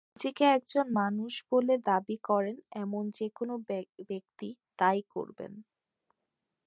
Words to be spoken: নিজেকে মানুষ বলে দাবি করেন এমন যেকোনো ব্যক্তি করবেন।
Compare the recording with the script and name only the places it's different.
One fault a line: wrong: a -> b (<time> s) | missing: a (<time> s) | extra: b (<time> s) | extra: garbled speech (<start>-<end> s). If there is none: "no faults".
extra: একজন (0.6 s)
extra: তা-ই (4.8 s)